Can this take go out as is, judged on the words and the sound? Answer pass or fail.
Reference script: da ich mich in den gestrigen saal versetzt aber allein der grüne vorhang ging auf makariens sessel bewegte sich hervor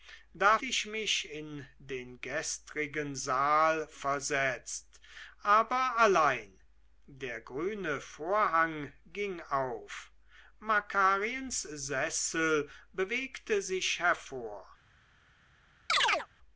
fail